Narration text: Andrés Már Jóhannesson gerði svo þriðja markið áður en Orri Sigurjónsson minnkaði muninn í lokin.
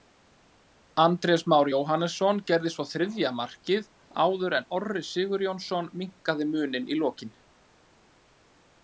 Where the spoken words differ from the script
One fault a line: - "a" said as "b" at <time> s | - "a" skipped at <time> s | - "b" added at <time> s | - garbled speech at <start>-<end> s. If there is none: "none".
none